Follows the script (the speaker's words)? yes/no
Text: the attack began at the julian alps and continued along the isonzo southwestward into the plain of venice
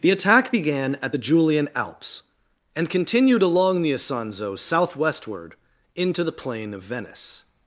yes